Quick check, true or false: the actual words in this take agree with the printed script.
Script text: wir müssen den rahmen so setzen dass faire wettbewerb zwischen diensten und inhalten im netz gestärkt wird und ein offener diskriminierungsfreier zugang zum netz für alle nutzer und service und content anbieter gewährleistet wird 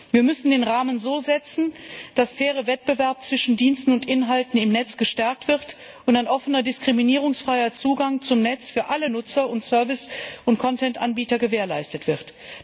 true